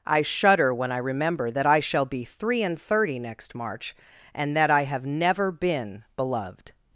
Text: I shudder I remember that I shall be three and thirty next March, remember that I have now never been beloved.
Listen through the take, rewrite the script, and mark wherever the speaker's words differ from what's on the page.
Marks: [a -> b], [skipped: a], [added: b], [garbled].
I shudder [added: when] I remember that I shall be three and thirty next March, [remember -> and] that I have [skipped: now] never been beloved.